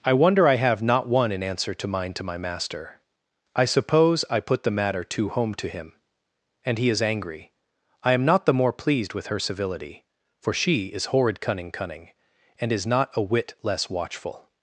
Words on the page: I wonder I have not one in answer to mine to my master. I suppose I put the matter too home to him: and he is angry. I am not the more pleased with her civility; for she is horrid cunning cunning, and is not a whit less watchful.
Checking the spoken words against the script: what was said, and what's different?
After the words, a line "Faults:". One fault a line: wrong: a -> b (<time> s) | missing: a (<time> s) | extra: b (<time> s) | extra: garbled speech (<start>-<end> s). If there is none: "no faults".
I wonder I have not one in answer to mine to my master. I suppose I put the matter too home to him: and he is angry. I am not the more pleased with her civility; for she is horrid cunning cunning, and is not a whit less watchful.
Faults:
no faults